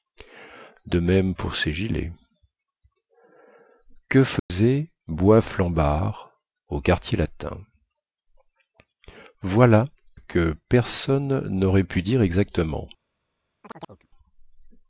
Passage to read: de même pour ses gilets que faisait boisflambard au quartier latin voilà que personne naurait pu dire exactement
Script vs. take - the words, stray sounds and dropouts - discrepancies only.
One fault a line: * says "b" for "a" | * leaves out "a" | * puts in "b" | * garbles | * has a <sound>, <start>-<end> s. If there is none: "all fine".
* has a dropout, 4.4-4.5 s
* has a chirp, 13.6-14.1 s